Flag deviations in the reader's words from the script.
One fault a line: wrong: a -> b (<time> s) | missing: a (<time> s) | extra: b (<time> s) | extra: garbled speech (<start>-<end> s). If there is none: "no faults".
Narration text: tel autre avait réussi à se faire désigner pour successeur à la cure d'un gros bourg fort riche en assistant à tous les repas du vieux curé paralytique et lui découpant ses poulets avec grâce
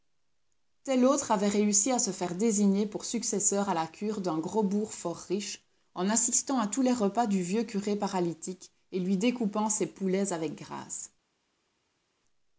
no faults